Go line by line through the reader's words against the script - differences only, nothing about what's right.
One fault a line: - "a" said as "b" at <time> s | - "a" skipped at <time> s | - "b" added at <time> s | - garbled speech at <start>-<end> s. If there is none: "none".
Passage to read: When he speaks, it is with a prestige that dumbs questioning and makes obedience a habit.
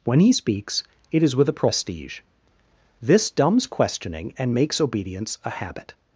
- "that" said as "this" at 3.0 s